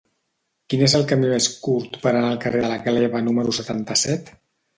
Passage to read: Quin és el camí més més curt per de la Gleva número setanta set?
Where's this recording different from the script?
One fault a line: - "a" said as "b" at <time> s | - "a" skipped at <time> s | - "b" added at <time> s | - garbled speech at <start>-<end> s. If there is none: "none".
- "més" skipped at 1.5 s
- "anar al carrer" added at 2.1 s